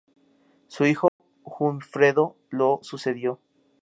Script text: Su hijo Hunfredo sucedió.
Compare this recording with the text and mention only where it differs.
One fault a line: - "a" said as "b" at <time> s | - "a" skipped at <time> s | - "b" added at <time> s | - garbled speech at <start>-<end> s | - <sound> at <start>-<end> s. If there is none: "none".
- dropout at 1.1-1.2 s
- "lo" added at 2.5 s